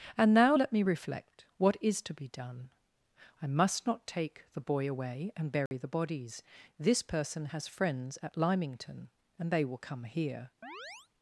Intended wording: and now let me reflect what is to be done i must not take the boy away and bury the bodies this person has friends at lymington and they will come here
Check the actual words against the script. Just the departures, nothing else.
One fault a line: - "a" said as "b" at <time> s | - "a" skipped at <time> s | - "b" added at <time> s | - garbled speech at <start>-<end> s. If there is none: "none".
none